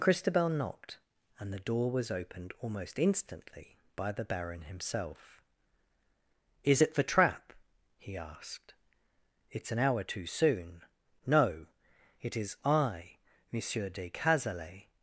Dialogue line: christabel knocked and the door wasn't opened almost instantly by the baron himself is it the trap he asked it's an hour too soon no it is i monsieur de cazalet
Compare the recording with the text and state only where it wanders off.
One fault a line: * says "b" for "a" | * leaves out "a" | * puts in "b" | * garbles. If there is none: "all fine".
* says "was" for "wasn't"